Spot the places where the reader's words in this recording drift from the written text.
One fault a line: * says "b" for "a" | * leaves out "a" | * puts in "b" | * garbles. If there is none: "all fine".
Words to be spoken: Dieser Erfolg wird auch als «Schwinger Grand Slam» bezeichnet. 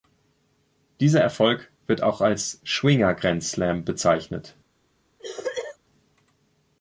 all fine